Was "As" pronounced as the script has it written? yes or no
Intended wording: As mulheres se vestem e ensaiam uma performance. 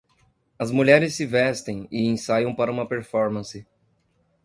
yes